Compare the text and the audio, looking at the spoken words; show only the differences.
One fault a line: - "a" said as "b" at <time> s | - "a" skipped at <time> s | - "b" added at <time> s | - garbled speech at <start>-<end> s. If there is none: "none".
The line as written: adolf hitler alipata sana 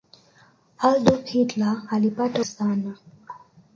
none